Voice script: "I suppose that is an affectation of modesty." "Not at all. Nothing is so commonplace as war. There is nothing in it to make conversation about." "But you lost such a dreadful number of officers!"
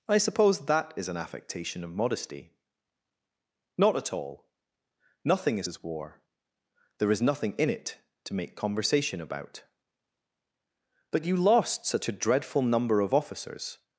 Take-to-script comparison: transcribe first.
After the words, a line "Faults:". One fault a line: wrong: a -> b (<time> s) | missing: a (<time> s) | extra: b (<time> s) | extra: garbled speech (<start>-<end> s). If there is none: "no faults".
"I suppose that is an affectation of modesty." "Not at all. Nothing is as war. There is nothing in it to make conversation about." "But you lost such a dreadful number of officers!"
Faults:
missing: so commonplace (5.7 s)